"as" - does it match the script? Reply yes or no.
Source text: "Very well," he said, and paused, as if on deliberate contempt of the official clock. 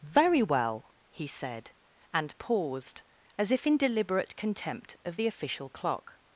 yes